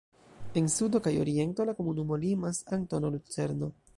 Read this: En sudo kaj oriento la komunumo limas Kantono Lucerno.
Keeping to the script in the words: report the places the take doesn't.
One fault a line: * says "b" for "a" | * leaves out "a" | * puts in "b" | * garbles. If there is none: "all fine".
all fine